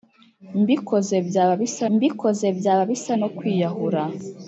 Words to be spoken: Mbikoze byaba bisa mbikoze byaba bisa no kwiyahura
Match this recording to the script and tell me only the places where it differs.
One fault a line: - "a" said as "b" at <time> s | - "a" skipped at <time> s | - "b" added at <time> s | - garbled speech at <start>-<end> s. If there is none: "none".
none